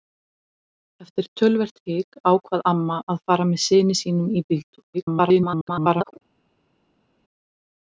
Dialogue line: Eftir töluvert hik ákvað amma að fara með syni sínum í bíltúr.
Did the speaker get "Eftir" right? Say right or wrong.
right